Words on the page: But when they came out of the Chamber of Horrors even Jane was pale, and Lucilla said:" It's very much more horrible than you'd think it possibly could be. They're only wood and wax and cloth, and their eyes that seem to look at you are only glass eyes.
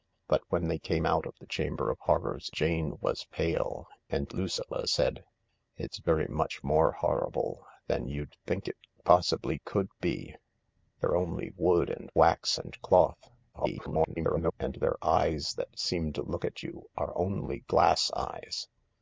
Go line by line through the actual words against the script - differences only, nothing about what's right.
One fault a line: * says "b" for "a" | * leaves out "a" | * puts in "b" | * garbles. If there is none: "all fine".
* leaves out "even"
* garbles